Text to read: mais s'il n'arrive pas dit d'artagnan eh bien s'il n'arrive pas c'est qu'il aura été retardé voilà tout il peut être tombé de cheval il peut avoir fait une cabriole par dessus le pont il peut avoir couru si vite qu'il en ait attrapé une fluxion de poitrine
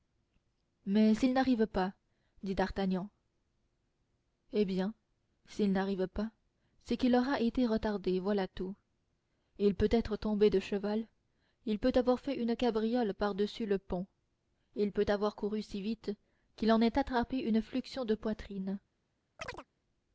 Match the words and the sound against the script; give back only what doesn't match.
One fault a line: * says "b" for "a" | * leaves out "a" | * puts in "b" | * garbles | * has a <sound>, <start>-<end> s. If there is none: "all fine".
* has a chirp, 19.4-19.7 s